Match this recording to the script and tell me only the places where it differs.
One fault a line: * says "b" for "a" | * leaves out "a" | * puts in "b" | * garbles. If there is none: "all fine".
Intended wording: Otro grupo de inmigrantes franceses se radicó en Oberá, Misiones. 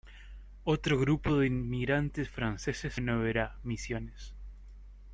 * leaves out "se radicó"